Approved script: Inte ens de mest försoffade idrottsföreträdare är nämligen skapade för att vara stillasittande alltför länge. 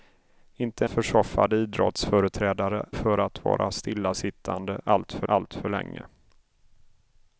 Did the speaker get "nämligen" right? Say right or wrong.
wrong